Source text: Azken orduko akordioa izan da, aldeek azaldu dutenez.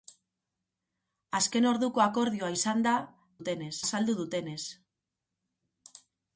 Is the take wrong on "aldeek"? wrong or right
wrong